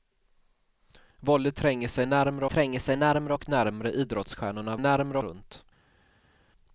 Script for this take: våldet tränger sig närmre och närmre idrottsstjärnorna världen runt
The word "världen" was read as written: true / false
false